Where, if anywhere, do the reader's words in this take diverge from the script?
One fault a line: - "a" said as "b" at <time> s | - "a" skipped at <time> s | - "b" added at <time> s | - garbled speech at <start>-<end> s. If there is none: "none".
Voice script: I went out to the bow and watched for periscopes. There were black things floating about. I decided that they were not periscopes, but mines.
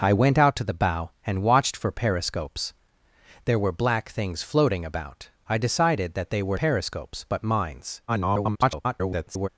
- "not" skipped at 6.6 s
- garbled speech at 8.1-9.5 s